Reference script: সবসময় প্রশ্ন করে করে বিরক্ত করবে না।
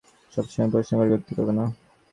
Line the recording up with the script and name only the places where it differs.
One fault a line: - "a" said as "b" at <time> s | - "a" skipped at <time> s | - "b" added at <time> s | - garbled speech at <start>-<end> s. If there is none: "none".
- "করে" skipped at 1.1 s